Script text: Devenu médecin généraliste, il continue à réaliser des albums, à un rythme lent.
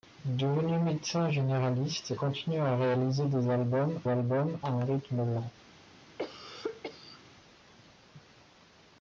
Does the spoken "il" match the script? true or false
false